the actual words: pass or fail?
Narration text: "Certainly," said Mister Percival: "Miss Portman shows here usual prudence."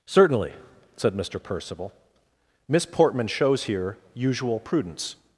pass